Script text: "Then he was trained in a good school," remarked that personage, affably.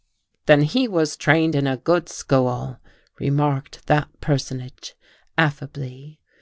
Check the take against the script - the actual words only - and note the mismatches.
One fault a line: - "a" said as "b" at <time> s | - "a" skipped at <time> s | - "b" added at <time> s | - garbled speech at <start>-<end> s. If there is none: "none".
none